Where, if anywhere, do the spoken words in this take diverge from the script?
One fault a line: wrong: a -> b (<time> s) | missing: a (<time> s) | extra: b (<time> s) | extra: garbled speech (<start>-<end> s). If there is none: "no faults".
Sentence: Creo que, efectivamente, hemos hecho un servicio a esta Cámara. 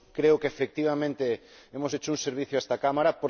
no faults